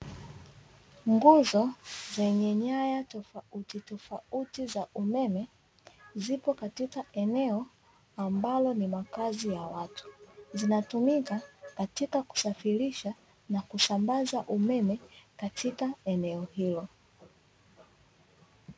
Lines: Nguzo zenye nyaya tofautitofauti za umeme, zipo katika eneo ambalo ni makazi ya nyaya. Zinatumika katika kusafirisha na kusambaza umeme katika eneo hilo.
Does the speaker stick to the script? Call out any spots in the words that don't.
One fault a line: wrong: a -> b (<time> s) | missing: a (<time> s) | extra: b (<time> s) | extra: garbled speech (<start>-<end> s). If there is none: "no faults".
wrong: nyaya -> watu (9.6 s)